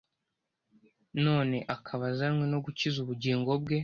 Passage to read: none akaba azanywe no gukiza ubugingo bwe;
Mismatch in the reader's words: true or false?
false